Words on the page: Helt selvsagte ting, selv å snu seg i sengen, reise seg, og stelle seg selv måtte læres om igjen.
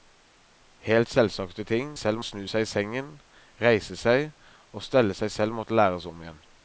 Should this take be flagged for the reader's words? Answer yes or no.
no